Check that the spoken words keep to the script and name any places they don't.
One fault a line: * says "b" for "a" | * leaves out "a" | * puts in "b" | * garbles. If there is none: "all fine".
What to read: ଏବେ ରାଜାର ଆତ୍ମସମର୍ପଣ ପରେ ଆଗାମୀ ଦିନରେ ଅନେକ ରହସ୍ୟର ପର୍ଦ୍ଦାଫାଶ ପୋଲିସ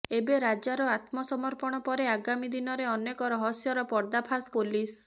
all fine